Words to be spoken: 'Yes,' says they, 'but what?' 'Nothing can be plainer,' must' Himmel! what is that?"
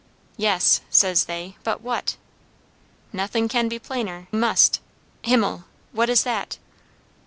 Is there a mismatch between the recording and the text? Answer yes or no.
no